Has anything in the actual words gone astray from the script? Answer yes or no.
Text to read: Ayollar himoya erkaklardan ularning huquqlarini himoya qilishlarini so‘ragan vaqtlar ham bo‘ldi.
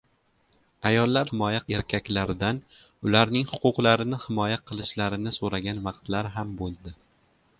no